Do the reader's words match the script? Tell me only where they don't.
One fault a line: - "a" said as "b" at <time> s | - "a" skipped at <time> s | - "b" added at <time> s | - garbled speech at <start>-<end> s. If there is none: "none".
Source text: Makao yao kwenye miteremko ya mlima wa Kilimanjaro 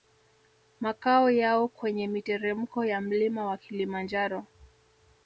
none